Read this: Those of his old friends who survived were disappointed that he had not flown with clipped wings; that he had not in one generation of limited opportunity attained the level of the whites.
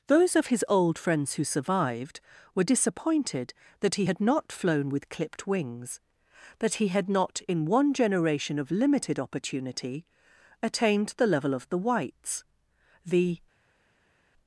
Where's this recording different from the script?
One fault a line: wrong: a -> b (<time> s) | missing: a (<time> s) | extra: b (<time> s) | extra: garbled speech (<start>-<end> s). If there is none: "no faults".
extra: The (13.0 s)